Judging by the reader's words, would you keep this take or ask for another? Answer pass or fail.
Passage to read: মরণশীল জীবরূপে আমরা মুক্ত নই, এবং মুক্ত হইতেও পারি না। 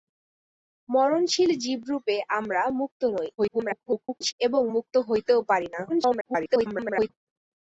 fail